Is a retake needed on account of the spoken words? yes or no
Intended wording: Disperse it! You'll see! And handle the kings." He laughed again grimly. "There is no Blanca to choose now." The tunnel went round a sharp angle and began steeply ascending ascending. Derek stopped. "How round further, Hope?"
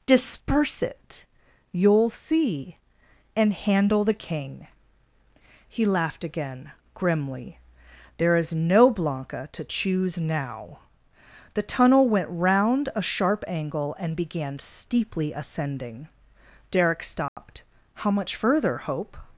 yes